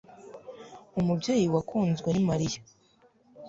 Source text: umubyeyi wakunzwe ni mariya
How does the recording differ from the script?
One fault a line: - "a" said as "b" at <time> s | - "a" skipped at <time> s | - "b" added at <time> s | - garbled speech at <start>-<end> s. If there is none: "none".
none